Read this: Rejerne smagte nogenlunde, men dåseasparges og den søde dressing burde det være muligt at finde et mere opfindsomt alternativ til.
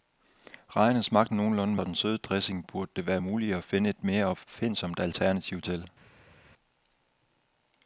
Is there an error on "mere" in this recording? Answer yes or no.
no